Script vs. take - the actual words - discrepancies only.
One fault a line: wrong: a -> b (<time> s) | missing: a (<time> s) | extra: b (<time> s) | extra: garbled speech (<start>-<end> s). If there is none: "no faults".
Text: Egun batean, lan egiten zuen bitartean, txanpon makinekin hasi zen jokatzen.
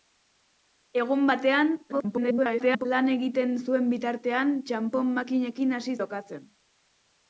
extra: garbled speech (1.9-2.9 s)
missing: zen (6.0 s)